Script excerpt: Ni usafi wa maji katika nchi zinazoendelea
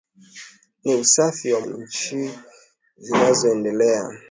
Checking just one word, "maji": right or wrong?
wrong